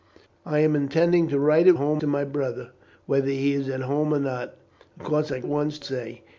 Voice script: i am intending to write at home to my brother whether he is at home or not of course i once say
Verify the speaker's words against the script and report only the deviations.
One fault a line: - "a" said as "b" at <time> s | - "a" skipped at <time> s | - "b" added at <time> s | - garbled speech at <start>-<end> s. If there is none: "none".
none